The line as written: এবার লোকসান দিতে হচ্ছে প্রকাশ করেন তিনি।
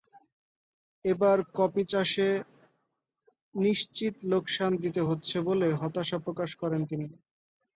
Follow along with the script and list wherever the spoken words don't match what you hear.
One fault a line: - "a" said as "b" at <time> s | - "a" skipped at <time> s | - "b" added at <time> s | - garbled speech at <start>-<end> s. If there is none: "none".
- "কপি চাষে নিশ্চিত" added at 1.6 s
- "বলে হতাশা" added at 5.5 s